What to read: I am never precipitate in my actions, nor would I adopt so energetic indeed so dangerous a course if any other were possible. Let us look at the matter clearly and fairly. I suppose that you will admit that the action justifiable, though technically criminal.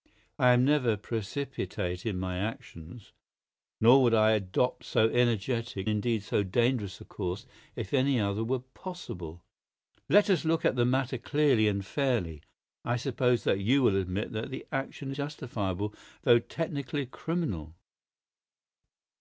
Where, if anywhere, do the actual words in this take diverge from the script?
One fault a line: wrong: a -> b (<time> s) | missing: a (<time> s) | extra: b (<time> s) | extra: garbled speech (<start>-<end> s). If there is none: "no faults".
no faults